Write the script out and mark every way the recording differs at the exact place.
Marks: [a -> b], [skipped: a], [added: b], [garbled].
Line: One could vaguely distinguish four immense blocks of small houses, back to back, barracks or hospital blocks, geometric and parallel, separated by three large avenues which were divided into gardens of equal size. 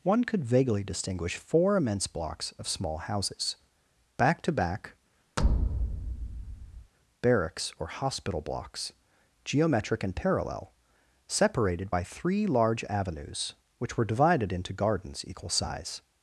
One could vaguely distinguish four immense blocks of small houses, back to back, barracks or hospital blocks, geometric and parallel, separated by three large avenues which were divided into gardens [skipped: of] equal size.